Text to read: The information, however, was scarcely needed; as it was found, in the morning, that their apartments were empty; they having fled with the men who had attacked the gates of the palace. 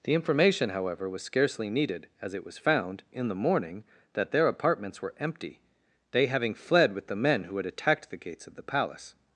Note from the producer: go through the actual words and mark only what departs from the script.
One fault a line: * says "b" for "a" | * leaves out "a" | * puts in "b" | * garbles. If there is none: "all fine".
all fine